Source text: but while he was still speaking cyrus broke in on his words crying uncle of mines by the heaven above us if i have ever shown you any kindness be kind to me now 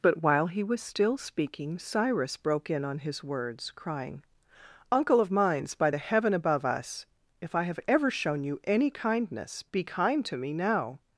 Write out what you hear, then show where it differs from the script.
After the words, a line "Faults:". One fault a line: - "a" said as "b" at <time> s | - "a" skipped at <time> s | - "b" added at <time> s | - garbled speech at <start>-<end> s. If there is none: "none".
but while he was still speaking cyrus broke in on his words crying uncle of mines by the heaven above us if i have ever shown you any kindness be kind to me now
Faults:
none